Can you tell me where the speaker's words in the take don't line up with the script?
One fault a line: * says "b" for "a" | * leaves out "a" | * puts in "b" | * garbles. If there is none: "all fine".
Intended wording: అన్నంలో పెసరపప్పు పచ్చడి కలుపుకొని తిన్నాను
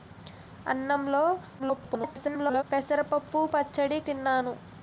* garbles
* leaves out "కలుపుకొని"